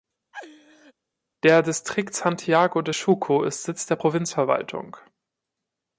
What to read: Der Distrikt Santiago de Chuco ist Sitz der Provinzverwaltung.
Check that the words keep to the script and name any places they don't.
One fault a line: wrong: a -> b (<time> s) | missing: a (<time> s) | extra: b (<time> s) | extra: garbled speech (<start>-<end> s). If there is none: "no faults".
no faults